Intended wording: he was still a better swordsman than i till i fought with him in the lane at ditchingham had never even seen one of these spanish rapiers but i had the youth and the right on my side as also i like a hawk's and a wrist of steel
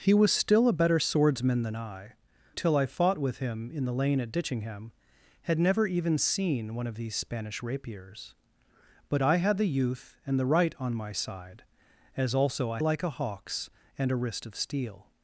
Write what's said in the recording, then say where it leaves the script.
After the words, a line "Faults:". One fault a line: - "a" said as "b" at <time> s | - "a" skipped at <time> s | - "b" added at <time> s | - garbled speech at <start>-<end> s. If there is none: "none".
he was still a better swordsman than i till i fought with him in the lane at ditchingham had never even seen one of these spanish rapiers but i had the youth and the right on my side as also i like a hawk's and a wrist of steel
Faults:
none